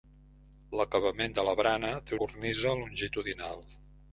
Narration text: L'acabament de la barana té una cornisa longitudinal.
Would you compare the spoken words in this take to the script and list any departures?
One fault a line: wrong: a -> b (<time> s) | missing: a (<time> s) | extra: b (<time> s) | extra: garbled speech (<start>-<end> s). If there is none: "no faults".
missing: una (2.2 s)